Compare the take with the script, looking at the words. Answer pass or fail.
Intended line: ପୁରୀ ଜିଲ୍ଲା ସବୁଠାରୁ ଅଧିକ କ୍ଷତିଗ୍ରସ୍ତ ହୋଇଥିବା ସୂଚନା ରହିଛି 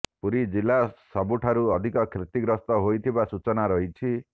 pass